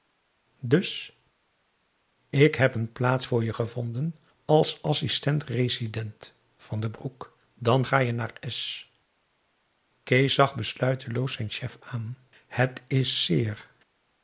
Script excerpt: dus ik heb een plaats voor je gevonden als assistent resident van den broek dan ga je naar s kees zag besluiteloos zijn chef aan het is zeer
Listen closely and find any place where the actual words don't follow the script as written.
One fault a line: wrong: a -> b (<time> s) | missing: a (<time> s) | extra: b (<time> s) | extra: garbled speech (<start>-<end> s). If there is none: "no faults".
no faults